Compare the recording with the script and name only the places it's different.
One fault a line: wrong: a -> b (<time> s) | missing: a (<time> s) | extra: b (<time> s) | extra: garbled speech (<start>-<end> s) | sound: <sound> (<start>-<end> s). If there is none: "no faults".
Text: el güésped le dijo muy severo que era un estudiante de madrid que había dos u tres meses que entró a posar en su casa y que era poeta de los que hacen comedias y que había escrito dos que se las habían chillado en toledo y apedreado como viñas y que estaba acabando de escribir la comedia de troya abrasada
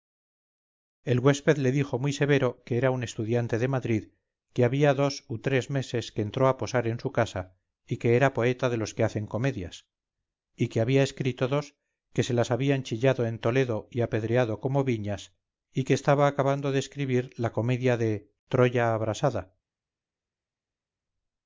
no faults